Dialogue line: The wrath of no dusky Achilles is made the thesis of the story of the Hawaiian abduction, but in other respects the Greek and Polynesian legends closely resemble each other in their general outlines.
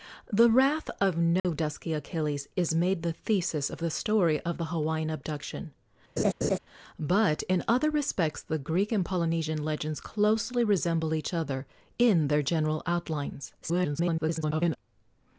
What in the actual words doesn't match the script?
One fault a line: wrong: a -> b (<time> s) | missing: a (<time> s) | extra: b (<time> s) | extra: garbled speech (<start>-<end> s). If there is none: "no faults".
extra: garbled speech (13.6-14.8 s)